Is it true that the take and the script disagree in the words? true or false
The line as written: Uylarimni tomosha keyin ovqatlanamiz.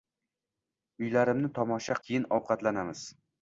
false